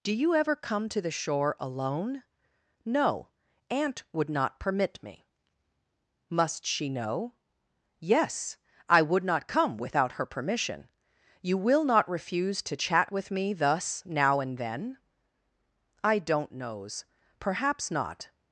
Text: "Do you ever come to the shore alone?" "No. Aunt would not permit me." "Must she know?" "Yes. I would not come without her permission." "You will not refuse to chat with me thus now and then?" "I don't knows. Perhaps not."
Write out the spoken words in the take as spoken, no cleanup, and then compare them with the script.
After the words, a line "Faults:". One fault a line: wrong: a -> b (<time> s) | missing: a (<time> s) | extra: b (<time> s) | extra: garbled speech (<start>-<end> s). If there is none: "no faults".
"Do you ever come to the shore alone?" "No. Aunt would not permit me." "Must she know?" "Yes. I would not come without her permission." "You will not refuse to chat with me thus now and then?" "I don't knows. Perhaps not."
Faults:
no faults